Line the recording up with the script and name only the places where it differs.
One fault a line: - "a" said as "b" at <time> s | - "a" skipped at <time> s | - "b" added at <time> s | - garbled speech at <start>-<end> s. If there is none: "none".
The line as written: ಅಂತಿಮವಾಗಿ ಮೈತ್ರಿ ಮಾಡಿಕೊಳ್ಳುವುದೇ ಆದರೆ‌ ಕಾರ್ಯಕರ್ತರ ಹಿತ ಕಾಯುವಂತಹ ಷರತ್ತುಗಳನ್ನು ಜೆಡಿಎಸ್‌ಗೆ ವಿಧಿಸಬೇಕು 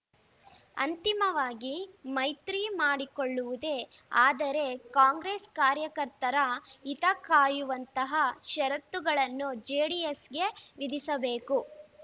- "ಕಾಂಗ್ರೆಸ್" added at 5.0 s